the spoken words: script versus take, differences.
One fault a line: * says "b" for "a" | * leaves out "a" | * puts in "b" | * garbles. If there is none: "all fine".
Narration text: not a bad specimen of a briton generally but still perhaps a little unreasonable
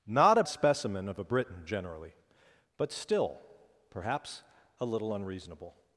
* leaves out "bad"